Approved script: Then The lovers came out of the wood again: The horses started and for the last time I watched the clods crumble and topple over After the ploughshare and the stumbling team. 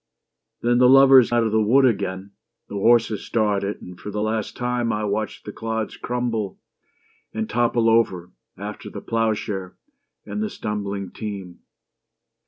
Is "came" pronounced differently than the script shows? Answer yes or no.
yes